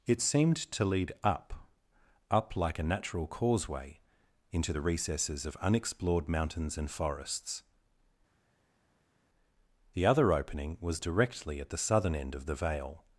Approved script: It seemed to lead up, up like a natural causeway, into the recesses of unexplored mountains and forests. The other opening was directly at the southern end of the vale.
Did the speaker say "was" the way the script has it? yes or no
yes